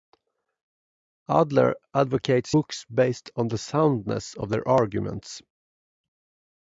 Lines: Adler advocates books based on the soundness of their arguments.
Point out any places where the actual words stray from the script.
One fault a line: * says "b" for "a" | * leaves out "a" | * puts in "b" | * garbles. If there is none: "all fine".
all fine